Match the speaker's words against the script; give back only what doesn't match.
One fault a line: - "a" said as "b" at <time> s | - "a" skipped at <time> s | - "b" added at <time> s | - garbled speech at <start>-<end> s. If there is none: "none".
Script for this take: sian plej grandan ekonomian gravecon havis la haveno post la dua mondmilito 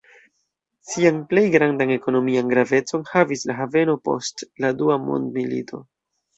none